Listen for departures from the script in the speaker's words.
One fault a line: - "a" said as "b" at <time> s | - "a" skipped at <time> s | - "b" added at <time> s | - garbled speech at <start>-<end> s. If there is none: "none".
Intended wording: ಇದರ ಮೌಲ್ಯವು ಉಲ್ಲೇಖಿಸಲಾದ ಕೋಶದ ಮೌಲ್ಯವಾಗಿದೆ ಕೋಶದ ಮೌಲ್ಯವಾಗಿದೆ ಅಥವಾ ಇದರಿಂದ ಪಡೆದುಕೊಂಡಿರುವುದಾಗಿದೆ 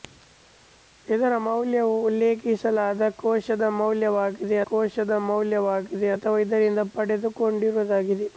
none